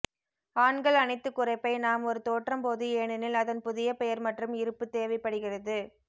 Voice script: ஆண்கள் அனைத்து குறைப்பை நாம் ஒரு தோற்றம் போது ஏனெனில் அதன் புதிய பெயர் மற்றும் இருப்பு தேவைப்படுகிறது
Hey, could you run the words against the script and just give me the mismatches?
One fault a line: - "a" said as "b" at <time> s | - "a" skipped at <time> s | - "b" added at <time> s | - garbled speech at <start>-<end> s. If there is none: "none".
none